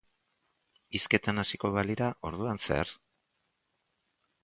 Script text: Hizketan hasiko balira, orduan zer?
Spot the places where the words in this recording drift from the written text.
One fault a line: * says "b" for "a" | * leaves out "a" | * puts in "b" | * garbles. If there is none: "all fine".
all fine